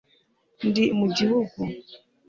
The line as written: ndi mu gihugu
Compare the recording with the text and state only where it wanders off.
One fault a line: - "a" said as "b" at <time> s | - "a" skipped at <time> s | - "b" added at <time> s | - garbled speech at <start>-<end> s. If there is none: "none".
none